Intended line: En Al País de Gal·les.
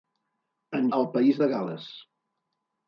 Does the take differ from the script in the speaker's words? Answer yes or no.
no